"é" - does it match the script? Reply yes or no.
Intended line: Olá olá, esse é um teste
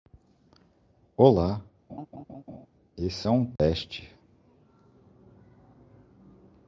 yes